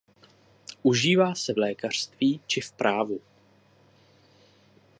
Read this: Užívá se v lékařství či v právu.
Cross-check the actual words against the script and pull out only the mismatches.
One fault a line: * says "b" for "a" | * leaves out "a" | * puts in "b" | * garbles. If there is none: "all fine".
all fine